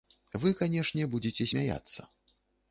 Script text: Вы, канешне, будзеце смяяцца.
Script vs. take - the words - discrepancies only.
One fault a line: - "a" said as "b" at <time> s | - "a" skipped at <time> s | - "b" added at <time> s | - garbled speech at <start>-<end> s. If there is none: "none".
none